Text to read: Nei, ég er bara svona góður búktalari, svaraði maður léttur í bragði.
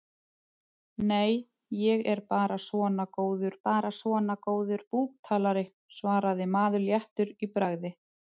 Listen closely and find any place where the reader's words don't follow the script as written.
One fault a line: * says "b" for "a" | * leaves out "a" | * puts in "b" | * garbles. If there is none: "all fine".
* puts in "bara svona góður"